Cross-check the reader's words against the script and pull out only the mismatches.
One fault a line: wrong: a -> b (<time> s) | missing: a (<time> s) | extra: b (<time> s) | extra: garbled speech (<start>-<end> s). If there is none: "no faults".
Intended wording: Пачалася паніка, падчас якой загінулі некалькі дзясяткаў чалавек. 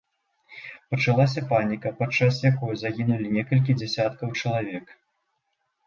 no faults